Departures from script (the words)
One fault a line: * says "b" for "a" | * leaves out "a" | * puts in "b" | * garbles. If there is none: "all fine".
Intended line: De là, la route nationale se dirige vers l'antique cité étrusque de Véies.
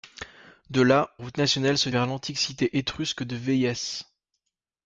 * leaves out "la"
* leaves out "dirige"